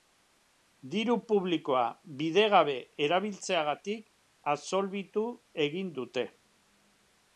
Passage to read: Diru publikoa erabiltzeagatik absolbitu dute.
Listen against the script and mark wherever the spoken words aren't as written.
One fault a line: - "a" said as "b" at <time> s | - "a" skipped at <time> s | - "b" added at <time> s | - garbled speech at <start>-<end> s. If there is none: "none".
- "bidegabe" added at 2.2 s
- "egin" added at 5.7 s